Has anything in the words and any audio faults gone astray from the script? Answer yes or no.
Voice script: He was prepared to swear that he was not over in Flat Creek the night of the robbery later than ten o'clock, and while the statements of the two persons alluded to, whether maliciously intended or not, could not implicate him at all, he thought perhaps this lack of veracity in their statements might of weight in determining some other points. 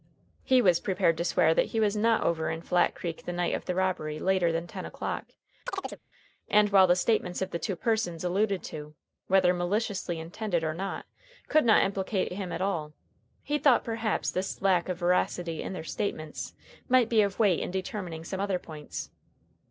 yes